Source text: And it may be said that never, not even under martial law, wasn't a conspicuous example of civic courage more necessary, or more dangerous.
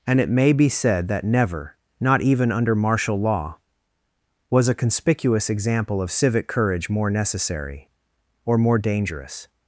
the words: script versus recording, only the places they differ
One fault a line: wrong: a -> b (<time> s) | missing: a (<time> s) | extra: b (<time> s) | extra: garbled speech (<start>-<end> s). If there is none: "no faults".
wrong: wasn't -> was (4.5 s)